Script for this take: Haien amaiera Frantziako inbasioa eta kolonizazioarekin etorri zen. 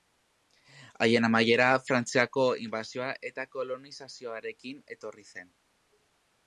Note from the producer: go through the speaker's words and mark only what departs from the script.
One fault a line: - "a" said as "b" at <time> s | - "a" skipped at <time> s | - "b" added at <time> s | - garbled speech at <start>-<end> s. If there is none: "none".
none